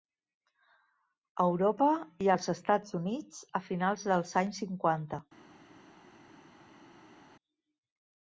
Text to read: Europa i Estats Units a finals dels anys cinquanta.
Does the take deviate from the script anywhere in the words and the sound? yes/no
yes